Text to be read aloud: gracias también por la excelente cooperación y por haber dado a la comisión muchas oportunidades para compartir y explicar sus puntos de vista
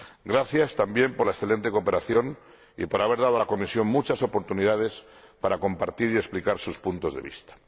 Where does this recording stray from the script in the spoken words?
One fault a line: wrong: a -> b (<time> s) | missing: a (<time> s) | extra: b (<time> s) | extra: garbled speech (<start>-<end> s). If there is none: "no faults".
no faults